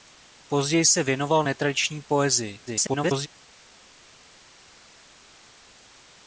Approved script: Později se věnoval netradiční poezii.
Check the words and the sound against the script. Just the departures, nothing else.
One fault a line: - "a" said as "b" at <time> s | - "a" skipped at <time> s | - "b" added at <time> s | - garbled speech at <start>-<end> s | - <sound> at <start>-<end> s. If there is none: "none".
- garbled speech at 2.7-3.3 s